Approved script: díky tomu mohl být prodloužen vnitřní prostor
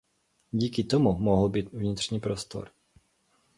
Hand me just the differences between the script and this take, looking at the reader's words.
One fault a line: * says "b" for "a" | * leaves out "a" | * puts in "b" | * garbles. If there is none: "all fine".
* leaves out "prodloužen"